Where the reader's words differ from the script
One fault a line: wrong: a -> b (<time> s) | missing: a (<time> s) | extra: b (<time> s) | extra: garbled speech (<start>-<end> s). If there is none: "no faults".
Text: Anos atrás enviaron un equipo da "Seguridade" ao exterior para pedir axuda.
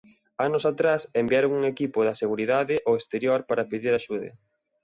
no faults